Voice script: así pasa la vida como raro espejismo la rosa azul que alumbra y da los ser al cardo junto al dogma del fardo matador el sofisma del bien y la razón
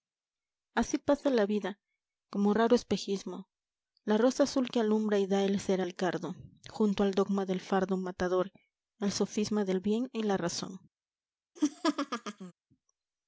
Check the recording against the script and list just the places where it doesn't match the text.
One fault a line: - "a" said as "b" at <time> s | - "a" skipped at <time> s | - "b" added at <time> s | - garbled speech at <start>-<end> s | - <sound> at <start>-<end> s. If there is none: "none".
- "los" said as "el" at 5.4 s
- laugh at 11.6-12.5 s